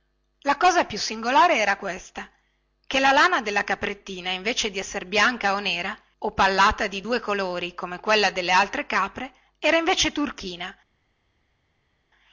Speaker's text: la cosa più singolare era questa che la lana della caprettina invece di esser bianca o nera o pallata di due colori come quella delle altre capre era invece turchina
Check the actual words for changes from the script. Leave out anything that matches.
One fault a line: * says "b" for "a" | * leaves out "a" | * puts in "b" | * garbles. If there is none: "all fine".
all fine